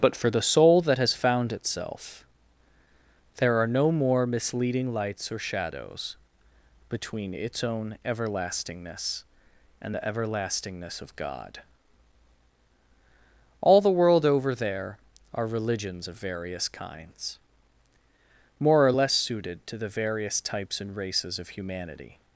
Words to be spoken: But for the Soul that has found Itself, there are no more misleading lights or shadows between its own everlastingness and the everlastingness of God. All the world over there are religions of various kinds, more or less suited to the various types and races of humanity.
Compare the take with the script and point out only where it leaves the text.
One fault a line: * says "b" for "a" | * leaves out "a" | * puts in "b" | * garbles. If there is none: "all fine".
all fine